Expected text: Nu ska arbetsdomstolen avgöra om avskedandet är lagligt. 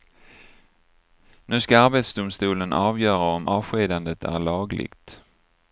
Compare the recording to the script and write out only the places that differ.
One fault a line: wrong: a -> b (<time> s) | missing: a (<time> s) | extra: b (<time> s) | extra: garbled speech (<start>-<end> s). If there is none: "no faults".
no faults